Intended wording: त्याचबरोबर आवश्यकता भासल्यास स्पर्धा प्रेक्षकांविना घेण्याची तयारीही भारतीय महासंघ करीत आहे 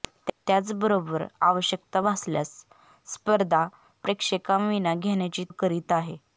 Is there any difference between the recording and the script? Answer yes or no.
yes